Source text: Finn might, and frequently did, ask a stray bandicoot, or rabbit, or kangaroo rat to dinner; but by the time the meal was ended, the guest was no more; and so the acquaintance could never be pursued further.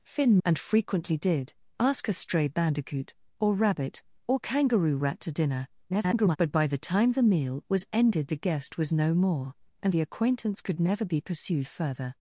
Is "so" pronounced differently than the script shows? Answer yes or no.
yes